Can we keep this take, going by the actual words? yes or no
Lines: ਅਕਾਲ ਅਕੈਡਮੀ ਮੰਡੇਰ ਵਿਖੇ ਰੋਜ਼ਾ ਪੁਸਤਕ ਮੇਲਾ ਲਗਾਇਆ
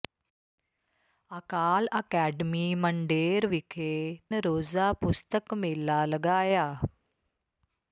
yes